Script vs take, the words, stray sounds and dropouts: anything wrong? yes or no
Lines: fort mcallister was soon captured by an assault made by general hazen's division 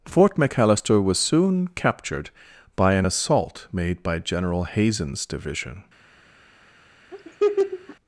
yes